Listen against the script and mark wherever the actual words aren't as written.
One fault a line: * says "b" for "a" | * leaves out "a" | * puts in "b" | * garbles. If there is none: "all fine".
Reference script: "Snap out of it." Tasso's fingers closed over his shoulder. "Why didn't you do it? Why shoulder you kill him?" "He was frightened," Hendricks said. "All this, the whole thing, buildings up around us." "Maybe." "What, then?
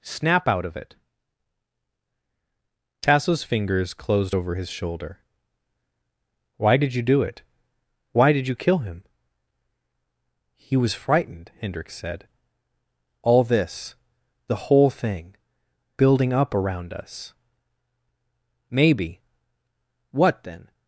* says "did" for "didn't"
* says "did" for "shoulder"
* says "building" for "buildings"